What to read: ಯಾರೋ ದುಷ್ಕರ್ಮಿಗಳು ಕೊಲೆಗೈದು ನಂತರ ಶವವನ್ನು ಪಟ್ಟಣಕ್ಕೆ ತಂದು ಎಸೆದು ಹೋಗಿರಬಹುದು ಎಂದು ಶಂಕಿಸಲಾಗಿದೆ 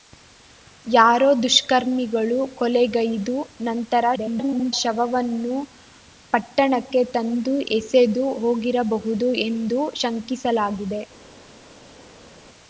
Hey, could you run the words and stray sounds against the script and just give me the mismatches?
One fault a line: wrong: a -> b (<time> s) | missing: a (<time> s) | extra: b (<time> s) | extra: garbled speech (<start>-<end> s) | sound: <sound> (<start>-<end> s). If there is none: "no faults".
extra: garbled speech (4.2-4.7 s)